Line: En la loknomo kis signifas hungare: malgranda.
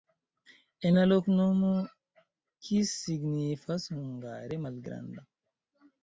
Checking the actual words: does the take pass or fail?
pass